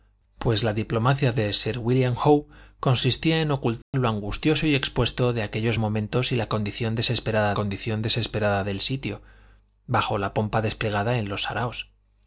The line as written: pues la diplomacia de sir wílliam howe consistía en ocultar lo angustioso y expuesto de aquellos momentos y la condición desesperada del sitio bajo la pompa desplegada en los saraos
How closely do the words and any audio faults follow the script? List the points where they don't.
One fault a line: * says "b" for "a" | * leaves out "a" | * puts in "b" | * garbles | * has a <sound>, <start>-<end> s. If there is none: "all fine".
* has a dropout, 3.8-3.9 s
* puts in "condición desesperada"